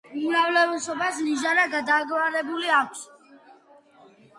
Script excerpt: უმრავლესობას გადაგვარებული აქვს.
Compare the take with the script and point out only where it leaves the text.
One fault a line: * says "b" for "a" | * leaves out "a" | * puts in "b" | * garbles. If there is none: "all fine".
* puts in "ნიჟარა"